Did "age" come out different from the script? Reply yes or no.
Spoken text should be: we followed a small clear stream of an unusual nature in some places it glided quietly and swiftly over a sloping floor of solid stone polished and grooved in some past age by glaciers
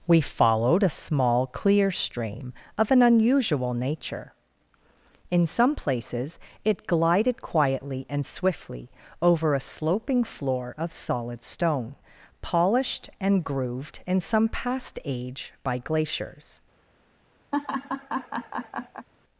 no